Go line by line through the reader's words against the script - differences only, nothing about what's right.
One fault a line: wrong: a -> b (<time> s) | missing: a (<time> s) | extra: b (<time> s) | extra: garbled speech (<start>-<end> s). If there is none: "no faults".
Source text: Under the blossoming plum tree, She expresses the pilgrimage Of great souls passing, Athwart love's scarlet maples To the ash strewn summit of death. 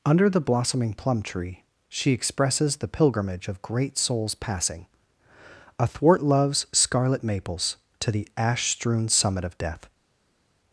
no faults